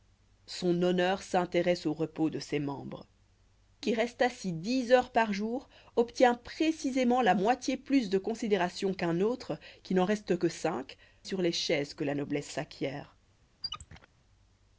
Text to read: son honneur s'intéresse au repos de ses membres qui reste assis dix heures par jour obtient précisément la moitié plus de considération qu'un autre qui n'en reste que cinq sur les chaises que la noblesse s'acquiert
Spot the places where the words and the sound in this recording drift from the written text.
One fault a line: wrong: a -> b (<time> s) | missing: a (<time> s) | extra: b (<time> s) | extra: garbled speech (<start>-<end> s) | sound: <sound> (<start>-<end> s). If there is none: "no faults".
sound: squeak (13.6-14.1 s)